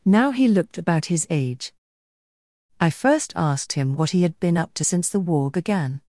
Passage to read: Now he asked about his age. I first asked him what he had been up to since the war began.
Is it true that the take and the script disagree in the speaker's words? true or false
true